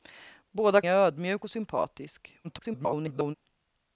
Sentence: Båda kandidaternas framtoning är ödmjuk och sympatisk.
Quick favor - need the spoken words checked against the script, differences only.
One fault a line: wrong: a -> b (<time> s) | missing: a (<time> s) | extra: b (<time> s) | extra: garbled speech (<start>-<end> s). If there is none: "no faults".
missing: kandidaternas framtoning (0.8 s)
extra: garbled speech (2.4-3.3 s)